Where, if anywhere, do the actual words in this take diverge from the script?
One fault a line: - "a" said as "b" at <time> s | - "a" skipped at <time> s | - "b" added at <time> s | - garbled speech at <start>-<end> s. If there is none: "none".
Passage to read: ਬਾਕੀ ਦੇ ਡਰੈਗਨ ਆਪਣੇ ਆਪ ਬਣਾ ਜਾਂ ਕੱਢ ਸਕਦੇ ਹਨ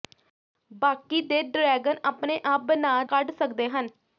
- "ਜਾਂ" skipped at 3.0 s